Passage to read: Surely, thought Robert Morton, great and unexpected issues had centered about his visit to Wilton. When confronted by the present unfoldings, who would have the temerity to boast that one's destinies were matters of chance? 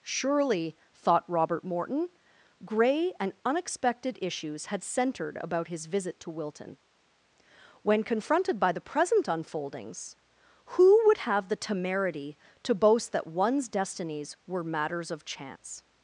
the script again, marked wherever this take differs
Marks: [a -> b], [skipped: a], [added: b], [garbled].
Surely, thought Robert Morton, [great -> grey] and unexpected issues had centered about his visit to Wilton. When confronted by the present unfoldings, who would have the temerity to boast that one's destinies were matters of chance?